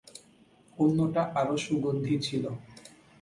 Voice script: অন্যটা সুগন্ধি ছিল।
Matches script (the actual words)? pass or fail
fail